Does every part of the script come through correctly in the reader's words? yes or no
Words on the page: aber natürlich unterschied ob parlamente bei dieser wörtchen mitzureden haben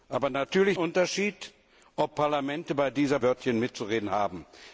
yes